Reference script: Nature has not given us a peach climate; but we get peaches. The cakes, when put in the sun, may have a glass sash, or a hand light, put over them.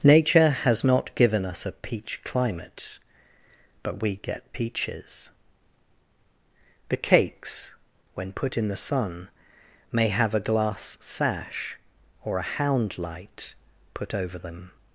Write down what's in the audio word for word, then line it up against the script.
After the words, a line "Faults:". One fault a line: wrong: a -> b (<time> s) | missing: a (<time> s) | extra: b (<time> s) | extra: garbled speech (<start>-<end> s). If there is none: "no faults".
Nature has not given us a peach climate; but we get peaches. The cakes, when put in the sun, may have a glass sash, or a hound light, put over them.
Faults:
wrong: hand -> hound (12.4 s)